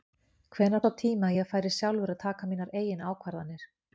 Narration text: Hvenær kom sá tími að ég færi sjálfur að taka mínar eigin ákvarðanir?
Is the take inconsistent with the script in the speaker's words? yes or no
yes